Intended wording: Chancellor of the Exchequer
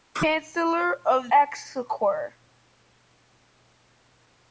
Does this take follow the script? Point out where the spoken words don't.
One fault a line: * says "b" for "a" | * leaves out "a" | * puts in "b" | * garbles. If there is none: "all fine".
* leaves out "the"